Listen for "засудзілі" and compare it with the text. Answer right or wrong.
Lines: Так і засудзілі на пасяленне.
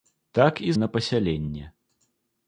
wrong